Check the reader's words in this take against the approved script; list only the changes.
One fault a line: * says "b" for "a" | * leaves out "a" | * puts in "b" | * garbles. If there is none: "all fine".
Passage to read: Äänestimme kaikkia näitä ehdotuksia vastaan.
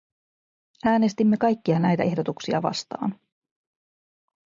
all fine